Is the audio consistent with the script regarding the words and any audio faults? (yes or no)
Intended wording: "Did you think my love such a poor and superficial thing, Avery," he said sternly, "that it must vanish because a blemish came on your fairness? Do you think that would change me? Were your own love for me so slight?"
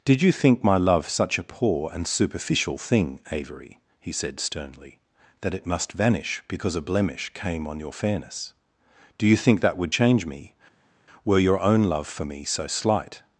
yes